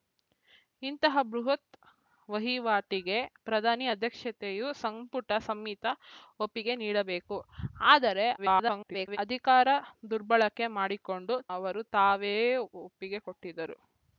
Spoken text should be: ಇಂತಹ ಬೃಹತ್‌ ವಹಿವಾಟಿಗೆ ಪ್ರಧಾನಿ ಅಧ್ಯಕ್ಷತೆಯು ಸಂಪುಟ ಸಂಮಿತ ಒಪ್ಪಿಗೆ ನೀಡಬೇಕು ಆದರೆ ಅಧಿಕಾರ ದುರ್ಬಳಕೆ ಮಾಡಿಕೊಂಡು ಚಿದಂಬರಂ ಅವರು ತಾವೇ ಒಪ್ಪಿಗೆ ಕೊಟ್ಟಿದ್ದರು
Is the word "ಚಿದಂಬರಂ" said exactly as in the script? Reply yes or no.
no